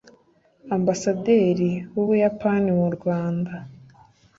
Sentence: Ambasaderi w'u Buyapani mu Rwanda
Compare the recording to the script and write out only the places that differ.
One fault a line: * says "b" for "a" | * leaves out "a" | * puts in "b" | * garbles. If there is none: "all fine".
all fine